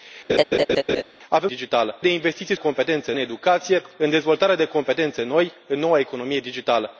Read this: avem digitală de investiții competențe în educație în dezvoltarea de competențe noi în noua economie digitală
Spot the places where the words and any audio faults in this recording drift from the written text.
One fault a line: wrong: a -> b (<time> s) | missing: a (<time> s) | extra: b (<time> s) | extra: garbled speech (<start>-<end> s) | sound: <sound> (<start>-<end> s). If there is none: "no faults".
sound: laugh (0.3-1.0 s)